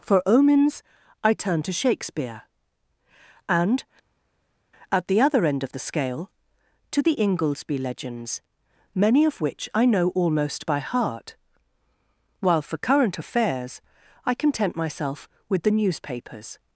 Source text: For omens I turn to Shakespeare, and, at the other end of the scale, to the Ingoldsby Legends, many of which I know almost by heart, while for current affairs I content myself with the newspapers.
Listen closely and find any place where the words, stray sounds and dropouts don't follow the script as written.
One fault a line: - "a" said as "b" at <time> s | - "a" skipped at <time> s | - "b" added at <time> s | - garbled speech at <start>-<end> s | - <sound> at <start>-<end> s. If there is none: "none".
none